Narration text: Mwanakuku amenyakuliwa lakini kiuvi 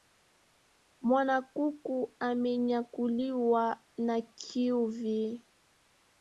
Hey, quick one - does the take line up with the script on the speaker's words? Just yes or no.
no